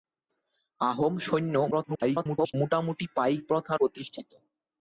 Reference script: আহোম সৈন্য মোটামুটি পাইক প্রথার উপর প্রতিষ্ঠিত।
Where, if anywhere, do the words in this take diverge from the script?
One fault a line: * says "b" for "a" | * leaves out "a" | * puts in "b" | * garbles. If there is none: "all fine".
* garbles
* leaves out "উপর"